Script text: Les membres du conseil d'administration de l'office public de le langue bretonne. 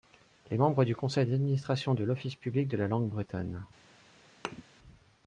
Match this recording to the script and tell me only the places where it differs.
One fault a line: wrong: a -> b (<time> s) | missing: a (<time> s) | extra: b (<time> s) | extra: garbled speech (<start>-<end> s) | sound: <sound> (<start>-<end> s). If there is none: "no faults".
wrong: le -> la (2.8 s)
sound: thud (4.4-4.6 s)